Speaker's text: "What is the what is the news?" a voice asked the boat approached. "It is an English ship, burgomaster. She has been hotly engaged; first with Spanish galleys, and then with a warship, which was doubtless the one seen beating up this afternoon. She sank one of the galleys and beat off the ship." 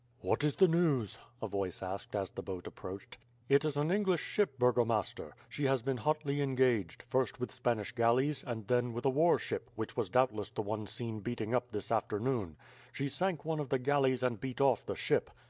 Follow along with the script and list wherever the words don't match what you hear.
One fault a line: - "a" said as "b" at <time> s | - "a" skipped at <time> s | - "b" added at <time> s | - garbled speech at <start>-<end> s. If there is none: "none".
- "what is the" skipped at 0.7 s
- "as" added at 2.1 s